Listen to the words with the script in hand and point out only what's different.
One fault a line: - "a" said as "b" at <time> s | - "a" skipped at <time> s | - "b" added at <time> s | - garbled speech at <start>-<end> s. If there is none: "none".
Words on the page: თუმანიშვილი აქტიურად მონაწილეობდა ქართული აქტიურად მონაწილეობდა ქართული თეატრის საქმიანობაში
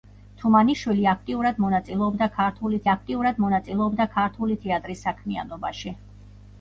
none